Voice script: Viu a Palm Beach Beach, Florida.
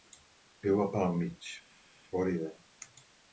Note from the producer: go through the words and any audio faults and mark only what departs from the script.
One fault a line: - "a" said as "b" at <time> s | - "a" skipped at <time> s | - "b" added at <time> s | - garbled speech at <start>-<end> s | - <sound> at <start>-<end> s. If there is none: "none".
- "Beach" skipped at 1.5 s